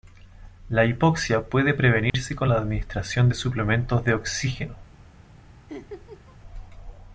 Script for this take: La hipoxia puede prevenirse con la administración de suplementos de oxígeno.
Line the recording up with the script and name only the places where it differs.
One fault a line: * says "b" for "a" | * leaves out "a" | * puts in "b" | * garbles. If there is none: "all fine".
all fine